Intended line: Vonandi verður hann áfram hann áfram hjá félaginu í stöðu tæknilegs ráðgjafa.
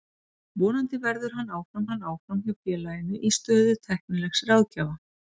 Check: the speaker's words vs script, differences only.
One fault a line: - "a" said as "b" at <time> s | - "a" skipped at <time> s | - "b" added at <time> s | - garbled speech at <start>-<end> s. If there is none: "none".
none